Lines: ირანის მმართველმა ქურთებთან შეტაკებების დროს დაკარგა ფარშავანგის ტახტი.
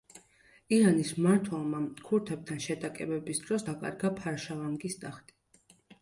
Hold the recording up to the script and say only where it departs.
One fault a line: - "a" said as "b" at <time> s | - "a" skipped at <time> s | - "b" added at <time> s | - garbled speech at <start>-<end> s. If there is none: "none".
none